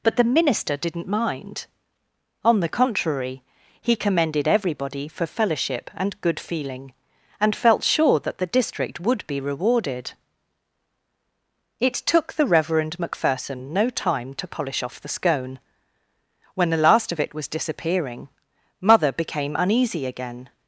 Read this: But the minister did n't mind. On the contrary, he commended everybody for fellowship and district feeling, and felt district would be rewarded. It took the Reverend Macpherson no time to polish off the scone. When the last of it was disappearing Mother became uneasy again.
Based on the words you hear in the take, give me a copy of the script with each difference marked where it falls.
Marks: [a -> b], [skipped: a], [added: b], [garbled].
But the minister did n't mind. On the contrary, he commended everybody for fellowship and [district -> good] feeling, and felt [added: sure that the] district would be rewarded. It took the Reverend Macpherson no time to polish off the scone. When the last of it was disappearing Mother became uneasy again.